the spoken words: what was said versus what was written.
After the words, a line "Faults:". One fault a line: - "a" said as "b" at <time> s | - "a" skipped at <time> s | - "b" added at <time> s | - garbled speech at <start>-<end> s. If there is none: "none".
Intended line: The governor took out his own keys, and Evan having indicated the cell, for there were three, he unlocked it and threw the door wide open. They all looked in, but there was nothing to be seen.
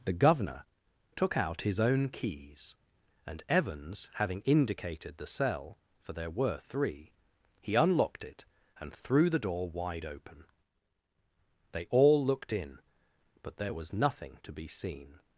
The governor took out his own keys, and Evans having indicated the cell, for there were three, he unlocked it and threw the door wide open. They all looked in, but there was nothing to be seen.
Faults:
- "Evan" said as "Evans" at 3.5 s